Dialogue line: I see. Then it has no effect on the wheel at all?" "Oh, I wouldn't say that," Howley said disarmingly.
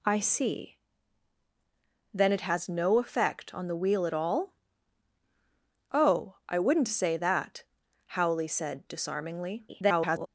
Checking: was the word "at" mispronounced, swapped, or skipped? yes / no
no